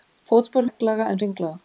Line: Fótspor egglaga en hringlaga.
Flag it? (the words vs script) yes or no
no